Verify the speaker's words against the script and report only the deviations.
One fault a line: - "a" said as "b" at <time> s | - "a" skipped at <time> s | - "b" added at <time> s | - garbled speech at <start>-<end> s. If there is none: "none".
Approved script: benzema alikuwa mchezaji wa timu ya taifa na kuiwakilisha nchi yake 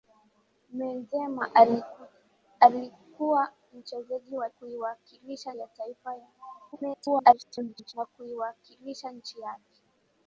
- "timu" said as "kuiwakilisha" at 4.5 s
- garbled speech at 6.7-7.9 s